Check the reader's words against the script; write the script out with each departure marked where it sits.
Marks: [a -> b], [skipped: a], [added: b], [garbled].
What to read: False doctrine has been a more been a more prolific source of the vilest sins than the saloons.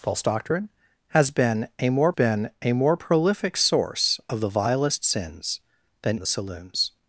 False doctrine has been a more been a more prolific source of the vilest sins than the saloons.